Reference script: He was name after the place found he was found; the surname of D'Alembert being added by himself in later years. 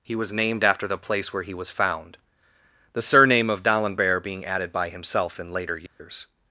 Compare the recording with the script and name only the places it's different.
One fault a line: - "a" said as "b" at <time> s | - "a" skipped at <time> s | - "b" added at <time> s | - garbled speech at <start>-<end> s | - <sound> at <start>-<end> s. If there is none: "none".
- "name" said as "named" at 0.3 s
- "found" said as "where" at 1.3 s
- dropout at 5.9-6.0 s